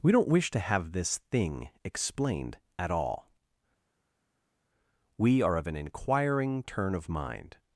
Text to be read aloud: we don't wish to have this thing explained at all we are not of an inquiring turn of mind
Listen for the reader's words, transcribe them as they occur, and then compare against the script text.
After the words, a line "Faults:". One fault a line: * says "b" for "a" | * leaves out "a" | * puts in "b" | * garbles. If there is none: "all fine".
we don't wish to have this thing explained at all we are of an inquiring turn of mind
Faults:
* leaves out "not"